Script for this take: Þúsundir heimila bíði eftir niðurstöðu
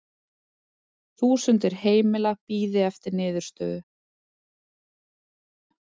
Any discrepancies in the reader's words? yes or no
no